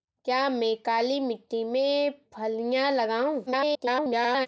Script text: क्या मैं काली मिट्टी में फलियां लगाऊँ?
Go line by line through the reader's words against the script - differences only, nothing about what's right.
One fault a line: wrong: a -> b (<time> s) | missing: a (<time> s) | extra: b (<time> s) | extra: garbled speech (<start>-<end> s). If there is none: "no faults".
extra: garbled speech (3.5-4.5 s)